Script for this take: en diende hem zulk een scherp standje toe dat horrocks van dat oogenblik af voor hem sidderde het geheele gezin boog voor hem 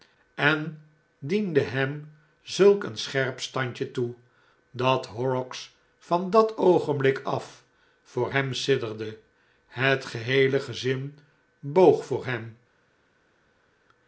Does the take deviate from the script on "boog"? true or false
false